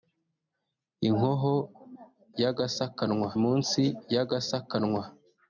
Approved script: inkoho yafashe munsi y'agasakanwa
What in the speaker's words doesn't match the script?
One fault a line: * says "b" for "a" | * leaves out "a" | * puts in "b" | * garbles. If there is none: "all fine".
* says "y'agasakanwa" for "yafashe"